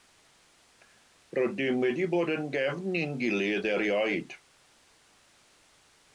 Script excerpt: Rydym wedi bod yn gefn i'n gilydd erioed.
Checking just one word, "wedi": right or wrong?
right